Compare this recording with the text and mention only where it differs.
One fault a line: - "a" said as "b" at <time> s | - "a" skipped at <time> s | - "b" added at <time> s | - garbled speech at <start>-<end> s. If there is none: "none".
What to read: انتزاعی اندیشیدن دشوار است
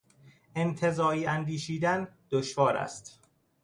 none